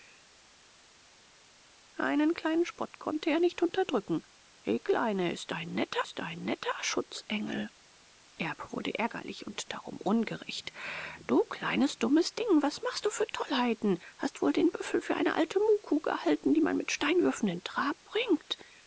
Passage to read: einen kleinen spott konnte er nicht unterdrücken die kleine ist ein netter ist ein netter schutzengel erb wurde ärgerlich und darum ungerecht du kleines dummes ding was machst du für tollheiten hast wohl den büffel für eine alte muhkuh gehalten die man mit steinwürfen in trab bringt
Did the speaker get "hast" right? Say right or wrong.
right